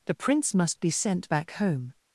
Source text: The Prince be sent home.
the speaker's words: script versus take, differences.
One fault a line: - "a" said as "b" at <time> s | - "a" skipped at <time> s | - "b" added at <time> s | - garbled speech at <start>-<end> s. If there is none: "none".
- "must" added at 0.6 s
- "back" added at 1.3 s